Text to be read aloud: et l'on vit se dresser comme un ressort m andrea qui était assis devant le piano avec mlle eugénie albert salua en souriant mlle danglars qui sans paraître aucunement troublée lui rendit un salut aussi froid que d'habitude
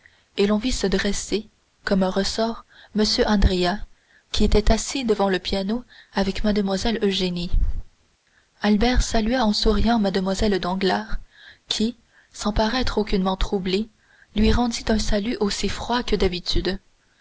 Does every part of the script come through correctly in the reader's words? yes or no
yes